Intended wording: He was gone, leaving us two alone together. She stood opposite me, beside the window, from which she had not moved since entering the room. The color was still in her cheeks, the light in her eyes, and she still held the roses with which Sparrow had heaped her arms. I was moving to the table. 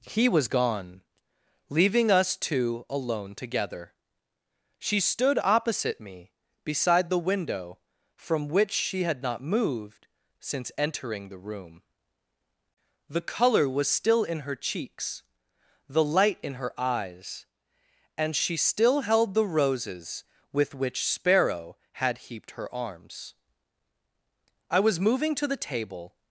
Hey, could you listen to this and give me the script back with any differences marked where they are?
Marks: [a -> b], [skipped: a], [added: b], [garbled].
He was gone, leaving us two alone together. She stood opposite me, beside the window, from which she had not moved since entering the room. The color was still in her cheeks, the light in her eyes, and she still held the roses with which Sparrow had heaped her arms. I was moving to the table.